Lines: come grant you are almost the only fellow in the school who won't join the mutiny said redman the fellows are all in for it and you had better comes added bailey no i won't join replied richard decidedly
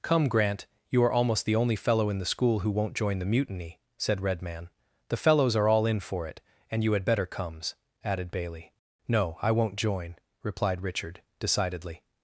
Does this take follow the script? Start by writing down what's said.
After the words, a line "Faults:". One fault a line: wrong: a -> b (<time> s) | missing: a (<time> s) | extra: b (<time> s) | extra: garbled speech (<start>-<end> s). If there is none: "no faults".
come grant you are almost the only fellow in the school who won't join the mutiny said redman the fellows are all in for it and you had better comes added bailey no i won't join replied richard decidedly
Faults:
no faults